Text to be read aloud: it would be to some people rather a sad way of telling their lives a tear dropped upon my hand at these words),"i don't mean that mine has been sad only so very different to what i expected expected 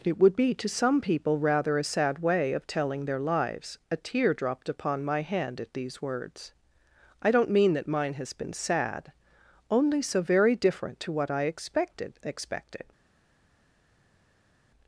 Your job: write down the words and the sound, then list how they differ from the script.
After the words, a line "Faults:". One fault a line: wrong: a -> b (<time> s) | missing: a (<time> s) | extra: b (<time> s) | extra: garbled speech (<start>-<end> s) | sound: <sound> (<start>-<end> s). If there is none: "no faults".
it would be to some people rather a sad way of telling their lives a tear dropped upon my hand at these words),"i don't mean that mine has been sad only so very different to what i expected expected
Faults:
no faults